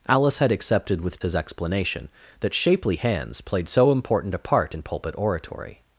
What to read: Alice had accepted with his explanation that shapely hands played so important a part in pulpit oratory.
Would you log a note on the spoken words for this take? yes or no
no